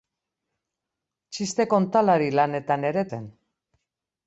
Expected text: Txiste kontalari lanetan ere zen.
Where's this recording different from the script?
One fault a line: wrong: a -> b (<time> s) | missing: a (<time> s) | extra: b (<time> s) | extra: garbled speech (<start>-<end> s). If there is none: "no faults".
no faults